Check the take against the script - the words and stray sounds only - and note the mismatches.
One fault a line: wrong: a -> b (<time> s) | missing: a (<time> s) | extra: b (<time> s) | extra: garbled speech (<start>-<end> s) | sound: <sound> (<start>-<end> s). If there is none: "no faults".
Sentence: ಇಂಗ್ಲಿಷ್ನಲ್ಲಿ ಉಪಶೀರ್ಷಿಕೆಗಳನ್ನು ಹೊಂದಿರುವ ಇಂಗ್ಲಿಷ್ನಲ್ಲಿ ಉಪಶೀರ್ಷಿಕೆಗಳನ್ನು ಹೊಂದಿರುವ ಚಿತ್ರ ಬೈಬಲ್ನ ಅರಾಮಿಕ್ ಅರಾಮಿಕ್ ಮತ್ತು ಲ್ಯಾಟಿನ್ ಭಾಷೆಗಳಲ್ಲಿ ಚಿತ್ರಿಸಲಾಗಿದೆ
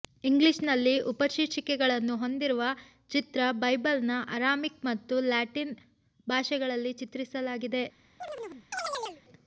missing: ಇಂಗ್ಲಿಷ್ನಲ್ಲಿ ಉಪಶೀರ್ಷಿಕೆಗಳನ್ನು ಹೊಂದಿರುವ (2.6 s)
missing: ಅರಾಮಿಕ್ (4.8 s)
sound: chirp (8.2-9.2 s)